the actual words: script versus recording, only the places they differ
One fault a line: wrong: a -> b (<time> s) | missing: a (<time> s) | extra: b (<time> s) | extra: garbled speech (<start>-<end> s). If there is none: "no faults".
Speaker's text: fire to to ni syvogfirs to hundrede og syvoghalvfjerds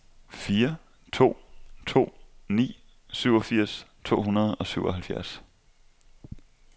no faults